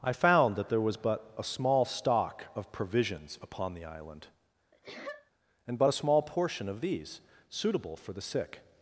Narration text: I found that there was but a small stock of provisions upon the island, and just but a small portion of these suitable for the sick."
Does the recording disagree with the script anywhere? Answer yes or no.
yes